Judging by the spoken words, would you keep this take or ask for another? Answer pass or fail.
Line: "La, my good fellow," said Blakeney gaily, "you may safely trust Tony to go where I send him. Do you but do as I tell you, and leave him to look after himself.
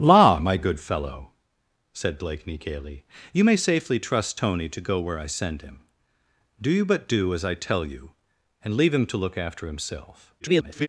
fail